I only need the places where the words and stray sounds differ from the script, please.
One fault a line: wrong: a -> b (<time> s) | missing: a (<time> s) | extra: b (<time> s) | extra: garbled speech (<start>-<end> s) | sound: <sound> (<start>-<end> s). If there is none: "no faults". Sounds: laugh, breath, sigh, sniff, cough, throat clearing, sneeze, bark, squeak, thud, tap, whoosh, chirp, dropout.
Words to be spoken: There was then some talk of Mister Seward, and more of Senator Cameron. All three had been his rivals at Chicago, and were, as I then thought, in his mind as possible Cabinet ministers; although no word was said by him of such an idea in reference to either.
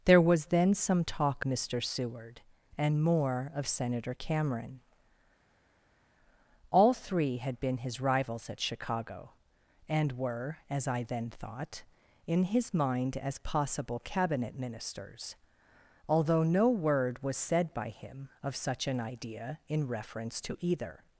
missing: of (1.4 s)